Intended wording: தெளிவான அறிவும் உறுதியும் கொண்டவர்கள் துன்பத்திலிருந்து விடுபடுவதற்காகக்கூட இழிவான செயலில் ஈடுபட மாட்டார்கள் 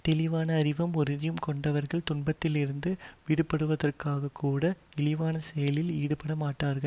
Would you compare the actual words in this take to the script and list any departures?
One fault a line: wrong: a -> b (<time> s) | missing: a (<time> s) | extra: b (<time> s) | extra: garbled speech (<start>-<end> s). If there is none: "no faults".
no faults